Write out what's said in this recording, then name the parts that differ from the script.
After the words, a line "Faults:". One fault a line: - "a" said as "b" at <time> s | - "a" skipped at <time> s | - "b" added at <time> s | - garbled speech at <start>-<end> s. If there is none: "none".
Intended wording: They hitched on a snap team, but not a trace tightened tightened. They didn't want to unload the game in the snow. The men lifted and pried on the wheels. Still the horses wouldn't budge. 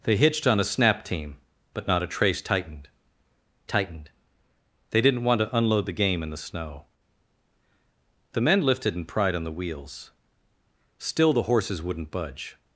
They hitched on a snap team, but not a trace tightened tightened. They didn't want to unload the game in the snow. The men lifted and pried on the wheels. Still the horses wouldn't budge.
Faults:
none